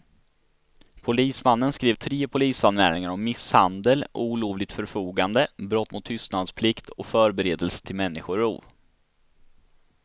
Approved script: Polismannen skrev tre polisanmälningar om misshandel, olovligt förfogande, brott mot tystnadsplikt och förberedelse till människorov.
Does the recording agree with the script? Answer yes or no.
yes